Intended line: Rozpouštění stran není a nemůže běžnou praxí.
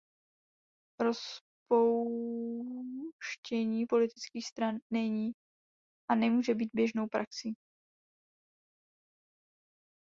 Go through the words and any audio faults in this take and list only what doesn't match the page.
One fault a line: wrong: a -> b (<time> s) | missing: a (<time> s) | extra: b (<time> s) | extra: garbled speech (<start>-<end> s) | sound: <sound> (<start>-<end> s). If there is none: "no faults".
extra: politických (3.9 s)
extra: být (6.5 s)